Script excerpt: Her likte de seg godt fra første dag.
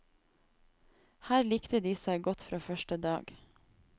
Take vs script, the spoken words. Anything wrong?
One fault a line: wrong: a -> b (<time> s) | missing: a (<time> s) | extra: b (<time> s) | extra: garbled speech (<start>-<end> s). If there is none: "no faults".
no faults